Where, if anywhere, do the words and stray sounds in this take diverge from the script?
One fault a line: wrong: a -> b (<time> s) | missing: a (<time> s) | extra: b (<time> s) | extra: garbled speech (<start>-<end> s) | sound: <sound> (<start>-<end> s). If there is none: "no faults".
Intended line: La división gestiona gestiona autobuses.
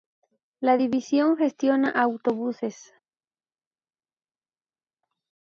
missing: gestiona (1.9 s)